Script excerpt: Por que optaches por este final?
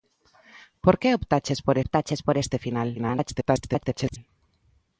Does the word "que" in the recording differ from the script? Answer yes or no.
no